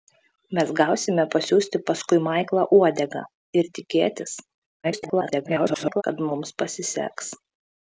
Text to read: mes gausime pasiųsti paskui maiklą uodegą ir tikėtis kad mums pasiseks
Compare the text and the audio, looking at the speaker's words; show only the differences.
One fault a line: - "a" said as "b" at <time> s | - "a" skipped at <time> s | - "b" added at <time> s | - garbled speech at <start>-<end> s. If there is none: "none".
- garbled speech at 4.8-6.0 s